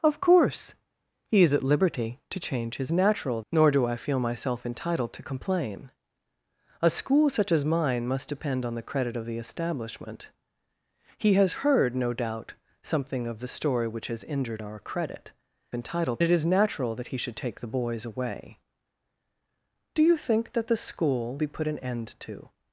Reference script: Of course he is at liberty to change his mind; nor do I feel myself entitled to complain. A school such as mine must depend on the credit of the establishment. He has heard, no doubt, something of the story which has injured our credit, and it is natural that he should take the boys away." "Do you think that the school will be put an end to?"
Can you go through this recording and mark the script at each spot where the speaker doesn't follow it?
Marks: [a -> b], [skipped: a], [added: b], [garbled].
Of course he is at liberty to change his [mind; -> natural] nor do I feel myself entitled to complain. A school such as mine must depend on the credit of the establishment. He has heard, no doubt, something of the story which has injured our credit, [and -> entitled] it is natural that he should take the boys away." "Do you think that the school [skipped: will] be put an end to?"